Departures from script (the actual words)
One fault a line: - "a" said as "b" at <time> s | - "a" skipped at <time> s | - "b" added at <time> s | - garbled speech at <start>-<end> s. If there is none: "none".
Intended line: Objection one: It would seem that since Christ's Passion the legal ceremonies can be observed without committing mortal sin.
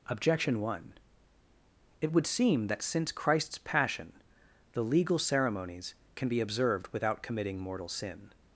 none